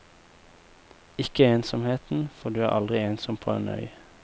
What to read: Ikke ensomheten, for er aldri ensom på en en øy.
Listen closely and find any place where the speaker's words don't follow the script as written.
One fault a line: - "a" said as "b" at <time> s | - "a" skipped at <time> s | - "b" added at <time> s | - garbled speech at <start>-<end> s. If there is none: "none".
- "du" added at 2.5 s
- "en" skipped at 3.7 s